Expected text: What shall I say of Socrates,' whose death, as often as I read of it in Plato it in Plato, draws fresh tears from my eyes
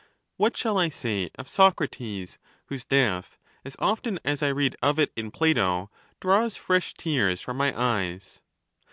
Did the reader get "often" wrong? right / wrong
right